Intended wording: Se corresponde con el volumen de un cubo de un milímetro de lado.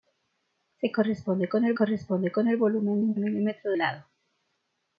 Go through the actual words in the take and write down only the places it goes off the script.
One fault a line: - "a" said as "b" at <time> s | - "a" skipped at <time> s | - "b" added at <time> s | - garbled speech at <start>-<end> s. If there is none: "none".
- "volumen de un cubo" said as "corresponde con el volumen" at 1.7 s
- "un" added at 3.1 s
- "de" skipped at 3.7 s